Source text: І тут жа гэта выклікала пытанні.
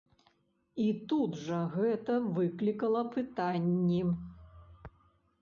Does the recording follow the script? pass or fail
pass